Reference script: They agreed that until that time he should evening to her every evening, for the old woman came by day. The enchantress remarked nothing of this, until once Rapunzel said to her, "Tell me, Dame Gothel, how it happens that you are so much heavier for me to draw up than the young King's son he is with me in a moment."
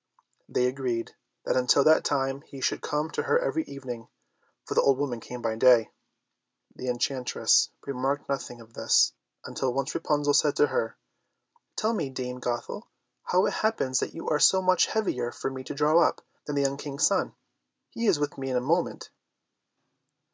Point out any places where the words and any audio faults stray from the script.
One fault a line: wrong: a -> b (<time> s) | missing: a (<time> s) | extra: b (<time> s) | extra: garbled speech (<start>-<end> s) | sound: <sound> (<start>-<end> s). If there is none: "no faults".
wrong: evening -> come (2.8 s)